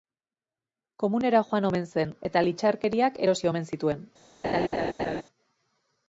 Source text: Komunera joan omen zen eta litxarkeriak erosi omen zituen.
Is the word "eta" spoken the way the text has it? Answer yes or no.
yes